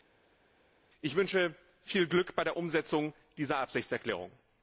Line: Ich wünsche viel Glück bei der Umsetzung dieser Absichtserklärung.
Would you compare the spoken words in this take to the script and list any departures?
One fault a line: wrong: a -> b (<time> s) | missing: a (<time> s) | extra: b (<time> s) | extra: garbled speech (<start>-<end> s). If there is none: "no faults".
no faults